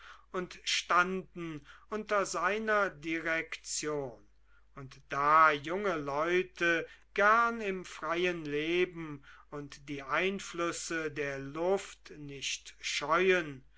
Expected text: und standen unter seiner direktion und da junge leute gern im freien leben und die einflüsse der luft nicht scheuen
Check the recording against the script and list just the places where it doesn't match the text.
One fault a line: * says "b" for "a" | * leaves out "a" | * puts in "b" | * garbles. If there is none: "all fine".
all fine